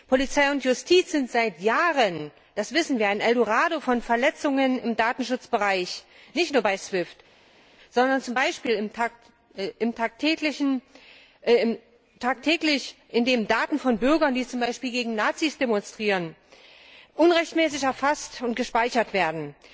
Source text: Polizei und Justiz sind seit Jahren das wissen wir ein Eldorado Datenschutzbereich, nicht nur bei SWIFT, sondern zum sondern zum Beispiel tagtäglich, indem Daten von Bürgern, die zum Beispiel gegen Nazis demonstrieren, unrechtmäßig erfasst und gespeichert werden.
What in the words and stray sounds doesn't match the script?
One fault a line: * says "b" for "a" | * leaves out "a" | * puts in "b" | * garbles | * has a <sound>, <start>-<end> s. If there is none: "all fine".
* puts in "von Verletzungen im"
* leaves out "sondern zum"